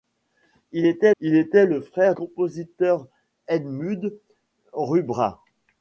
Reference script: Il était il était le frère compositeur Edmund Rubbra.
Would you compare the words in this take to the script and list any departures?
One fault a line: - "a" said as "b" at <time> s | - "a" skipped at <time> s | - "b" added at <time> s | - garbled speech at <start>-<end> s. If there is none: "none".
none